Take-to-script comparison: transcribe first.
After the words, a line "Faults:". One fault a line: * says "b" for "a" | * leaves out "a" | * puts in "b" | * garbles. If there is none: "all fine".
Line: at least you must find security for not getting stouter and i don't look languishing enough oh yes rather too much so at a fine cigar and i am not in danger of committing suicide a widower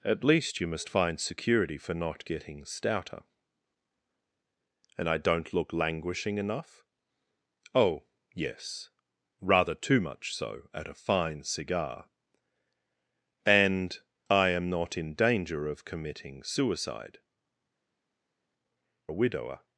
at least you must find security for not getting stouter and i don't look languishing enough oh yes rather too much so at a fine cigar and i am not in danger of committing suicide a widower
Faults:
all fine